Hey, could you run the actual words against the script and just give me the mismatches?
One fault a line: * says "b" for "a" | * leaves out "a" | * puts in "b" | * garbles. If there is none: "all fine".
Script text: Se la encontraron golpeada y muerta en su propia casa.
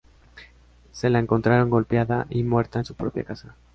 all fine